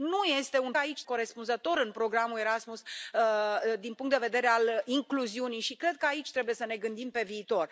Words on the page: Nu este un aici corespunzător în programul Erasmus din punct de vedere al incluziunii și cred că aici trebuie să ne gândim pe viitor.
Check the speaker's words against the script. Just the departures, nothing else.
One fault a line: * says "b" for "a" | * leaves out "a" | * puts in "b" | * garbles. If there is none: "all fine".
all fine